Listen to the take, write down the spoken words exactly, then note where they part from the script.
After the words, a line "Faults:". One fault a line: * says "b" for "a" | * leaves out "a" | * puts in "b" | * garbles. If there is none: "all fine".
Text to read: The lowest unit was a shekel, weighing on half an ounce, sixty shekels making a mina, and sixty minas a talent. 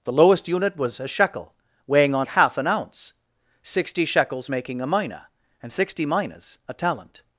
The lowest unit was a shekel, weighing on half an ounce, sixty shekels making a mina, and sixty minas a talent.
Faults:
all fine